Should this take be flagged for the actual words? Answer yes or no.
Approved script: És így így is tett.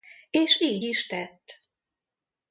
yes